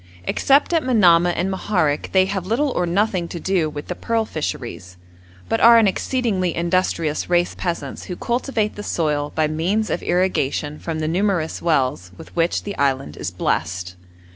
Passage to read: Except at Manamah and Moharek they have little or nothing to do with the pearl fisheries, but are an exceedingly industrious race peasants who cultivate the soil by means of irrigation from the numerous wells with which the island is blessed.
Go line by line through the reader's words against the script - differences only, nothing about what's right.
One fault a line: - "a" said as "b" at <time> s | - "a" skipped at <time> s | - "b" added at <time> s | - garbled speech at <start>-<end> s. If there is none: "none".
none